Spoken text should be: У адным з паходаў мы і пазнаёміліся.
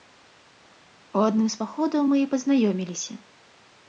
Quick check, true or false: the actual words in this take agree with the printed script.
true